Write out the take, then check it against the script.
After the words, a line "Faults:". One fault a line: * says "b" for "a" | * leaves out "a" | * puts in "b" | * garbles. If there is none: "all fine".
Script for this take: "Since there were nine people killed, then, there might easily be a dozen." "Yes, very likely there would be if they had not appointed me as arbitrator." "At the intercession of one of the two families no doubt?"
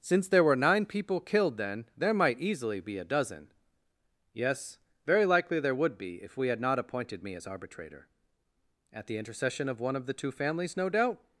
"Since there were nine people killed, then, there might easily be a dozen." "Yes, very likely there would be if we had not appointed me as arbitrator." "At the intercession of one of the two families no doubt?"
Faults:
* says "we" for "they"